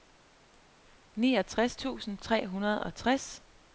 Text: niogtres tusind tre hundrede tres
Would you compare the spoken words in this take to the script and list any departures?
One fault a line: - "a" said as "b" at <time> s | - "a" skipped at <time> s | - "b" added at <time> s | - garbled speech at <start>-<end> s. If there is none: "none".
- "og" added at 2.8 s